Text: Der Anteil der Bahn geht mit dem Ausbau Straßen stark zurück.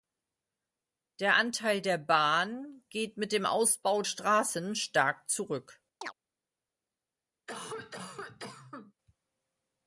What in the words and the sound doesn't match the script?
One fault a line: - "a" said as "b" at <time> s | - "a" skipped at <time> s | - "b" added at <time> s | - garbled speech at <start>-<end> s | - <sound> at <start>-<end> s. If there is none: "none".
- chirp at 6.0-6.1 s
- cough at 7.5-8.9 s